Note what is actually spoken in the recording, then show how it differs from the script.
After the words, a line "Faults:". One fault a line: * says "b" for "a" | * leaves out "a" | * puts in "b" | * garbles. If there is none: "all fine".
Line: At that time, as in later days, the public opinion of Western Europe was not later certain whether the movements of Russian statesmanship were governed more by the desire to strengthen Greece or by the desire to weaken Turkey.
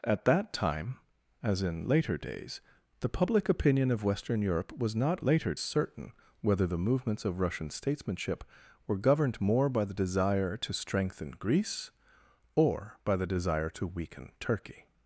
At that time, as in later days, the public opinion of Western Europe was not later certain whether the movements of Russian statesmanship were governed more by the desire to strengthen Greece or by the desire to weaken Turkey.
Faults:
all fine